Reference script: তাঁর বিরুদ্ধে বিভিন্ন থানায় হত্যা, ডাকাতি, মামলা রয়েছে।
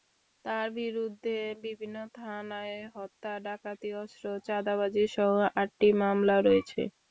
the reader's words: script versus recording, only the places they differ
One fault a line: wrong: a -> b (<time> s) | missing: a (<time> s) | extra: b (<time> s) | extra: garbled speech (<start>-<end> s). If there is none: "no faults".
extra: অস্ত্র চাঁদাবাজিসহ আটটি (4.0 s)